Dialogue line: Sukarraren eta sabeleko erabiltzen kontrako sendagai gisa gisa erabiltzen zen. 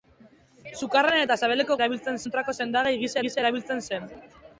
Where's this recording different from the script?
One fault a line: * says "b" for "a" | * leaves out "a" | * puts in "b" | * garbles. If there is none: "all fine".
all fine